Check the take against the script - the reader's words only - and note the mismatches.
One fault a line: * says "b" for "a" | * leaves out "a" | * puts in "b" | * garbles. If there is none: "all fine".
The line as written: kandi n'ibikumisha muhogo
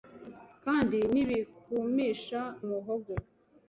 all fine